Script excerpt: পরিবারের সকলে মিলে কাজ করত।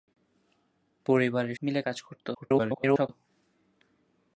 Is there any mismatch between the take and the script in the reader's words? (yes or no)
yes